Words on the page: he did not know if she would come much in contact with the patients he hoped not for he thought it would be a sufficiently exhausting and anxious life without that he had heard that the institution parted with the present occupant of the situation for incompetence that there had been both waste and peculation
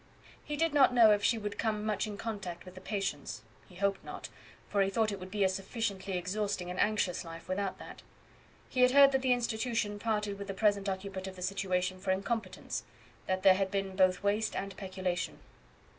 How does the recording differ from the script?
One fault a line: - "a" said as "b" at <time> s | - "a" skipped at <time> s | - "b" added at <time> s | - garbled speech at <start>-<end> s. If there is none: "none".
none